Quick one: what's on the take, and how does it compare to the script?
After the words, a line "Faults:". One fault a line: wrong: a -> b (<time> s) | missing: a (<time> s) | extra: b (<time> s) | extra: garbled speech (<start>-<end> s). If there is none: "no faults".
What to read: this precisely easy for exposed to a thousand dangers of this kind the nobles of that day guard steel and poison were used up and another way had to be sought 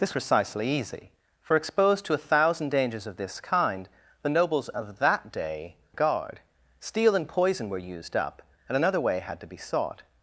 this precisely easy for exposed to a thousand dangers of this kind the nobles of that day guard steel and poison were used up and another way had to be sought
Faults:
no faults